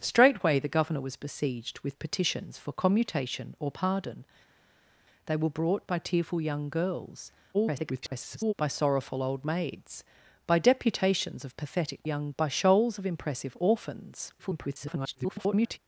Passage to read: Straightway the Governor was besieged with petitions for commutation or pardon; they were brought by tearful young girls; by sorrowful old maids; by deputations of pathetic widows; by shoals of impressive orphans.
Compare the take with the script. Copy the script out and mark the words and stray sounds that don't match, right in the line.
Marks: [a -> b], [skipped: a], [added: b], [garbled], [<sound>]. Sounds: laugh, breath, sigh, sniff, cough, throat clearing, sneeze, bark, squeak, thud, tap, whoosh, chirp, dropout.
Straightway the Governor was besieged with petitions for commutation or pardon; they were brought by tearful young girls; [garbled] by sorrowful old maids; by deputations of pathetic [widows; -> young] by shoals of impressive orphans. [garbled]